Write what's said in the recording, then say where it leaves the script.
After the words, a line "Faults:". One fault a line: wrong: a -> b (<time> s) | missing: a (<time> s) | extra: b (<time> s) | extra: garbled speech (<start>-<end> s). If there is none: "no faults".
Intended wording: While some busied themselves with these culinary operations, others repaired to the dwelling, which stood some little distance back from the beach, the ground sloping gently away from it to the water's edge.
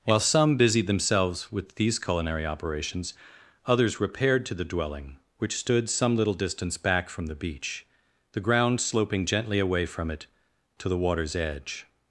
While some busied themselves with these culinary operations, others repaired to the dwelling, which stood some little distance back from the beach, the ground sloping gently away from it to the water's edge.
Faults:
no faults